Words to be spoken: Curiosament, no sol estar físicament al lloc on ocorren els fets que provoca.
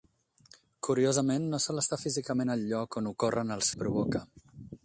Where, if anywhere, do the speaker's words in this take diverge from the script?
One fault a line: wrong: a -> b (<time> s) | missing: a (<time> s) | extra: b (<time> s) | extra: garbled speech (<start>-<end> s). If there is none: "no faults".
missing: fets (3.7 s)